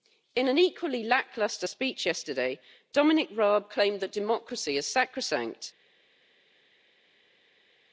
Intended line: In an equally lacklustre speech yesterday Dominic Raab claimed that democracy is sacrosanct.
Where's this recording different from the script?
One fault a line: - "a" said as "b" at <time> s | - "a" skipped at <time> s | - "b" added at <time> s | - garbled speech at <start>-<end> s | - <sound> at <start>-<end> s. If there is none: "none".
none